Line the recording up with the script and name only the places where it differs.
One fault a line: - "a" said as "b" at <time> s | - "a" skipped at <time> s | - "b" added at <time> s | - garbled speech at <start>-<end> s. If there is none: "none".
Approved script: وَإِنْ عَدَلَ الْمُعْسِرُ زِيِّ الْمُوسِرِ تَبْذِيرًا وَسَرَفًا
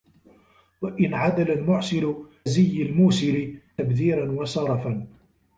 none